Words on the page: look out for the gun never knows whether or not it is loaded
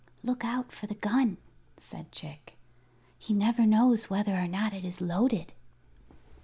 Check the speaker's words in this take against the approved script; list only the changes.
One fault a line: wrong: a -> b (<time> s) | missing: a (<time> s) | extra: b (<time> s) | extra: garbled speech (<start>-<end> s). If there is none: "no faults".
extra: said chick he (1.8 s)